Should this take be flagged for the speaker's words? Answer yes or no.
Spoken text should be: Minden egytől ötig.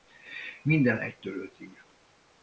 no